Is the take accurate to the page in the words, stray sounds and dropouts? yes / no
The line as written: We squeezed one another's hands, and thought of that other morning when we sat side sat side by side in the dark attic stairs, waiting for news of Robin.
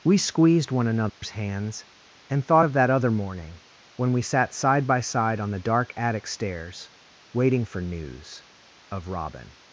no